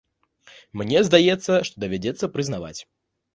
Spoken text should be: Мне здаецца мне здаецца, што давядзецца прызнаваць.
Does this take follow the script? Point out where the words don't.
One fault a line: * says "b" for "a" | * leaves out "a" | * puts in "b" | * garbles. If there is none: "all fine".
* leaves out "мне здаецца"